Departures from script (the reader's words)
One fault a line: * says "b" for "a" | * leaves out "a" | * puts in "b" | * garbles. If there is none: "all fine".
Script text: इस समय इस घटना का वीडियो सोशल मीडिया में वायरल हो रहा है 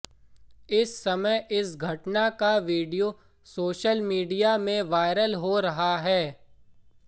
all fine